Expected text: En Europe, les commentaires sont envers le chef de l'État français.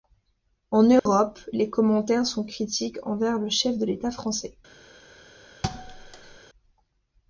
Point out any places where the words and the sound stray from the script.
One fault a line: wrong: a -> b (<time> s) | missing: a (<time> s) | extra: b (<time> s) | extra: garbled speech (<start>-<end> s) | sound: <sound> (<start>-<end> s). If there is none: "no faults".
sound: dropout (1.0-1.1 s)
extra: critiques (2.4 s)
sound: thud (5.6-6.4 s)